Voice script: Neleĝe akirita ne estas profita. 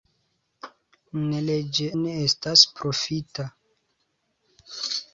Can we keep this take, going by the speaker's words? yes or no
no